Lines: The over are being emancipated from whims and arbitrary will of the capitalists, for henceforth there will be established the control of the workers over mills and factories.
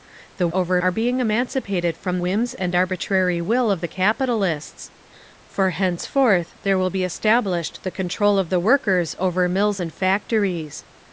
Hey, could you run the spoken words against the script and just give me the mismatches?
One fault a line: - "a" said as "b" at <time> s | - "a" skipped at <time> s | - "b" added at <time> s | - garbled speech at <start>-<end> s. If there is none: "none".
none